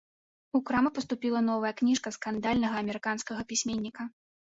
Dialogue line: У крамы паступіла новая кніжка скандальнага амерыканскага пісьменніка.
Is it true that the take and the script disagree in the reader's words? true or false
false